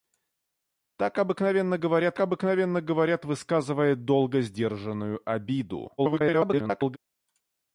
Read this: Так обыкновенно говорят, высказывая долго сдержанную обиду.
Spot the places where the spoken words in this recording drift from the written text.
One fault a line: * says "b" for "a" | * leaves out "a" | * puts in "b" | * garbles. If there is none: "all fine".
* puts in "обыкновенно говорят"
* garbles